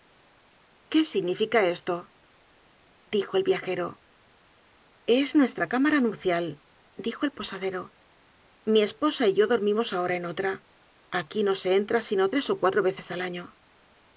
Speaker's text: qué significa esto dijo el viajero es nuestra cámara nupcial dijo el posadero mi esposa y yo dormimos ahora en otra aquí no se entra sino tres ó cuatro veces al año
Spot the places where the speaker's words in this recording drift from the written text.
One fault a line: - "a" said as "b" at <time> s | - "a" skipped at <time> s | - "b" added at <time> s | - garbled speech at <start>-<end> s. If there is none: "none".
none